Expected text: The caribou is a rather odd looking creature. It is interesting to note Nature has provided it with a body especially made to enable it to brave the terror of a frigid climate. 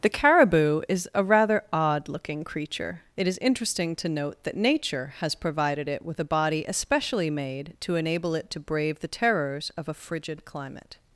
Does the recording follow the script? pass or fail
fail